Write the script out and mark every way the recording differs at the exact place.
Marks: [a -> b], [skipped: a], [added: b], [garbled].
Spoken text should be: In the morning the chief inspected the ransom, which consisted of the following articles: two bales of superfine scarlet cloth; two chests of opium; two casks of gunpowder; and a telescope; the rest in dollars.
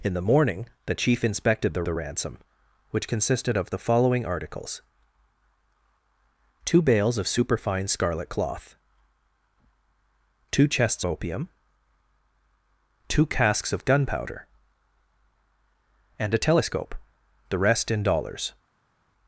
In the morning the chief inspected the [added: the] ransom, which consisted of the following articles: two bales of superfine scarlet cloth; two chests [skipped: of] opium; two casks of gunpowder; and a telescope; the rest in dollars.